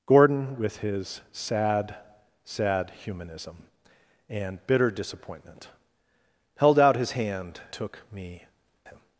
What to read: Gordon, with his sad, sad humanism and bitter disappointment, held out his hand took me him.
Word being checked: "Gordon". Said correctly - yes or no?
yes